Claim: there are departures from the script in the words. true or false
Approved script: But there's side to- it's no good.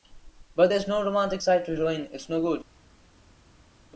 true